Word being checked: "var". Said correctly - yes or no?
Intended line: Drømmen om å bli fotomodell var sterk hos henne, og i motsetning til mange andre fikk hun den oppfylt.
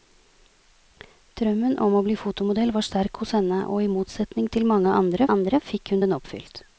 yes